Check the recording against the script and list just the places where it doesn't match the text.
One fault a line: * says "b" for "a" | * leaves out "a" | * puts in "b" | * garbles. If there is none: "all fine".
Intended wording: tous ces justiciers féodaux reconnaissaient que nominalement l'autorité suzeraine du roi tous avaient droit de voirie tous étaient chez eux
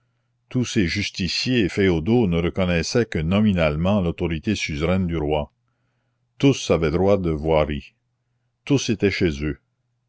* puts in "ne"